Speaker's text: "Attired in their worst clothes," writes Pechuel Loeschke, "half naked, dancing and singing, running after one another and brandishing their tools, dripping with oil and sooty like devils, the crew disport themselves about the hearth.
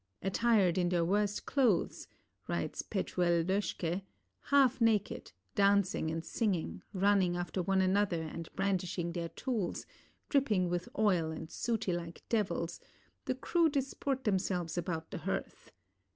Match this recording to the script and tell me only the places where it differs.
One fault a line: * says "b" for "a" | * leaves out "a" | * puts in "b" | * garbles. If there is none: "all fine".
all fine